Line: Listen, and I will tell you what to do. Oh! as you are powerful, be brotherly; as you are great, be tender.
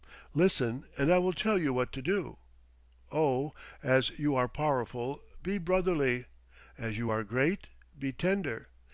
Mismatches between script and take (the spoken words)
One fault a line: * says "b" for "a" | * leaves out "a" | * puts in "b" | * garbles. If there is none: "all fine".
all fine